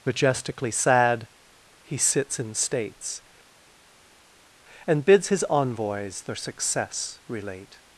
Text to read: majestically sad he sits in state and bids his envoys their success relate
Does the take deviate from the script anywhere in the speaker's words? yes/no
yes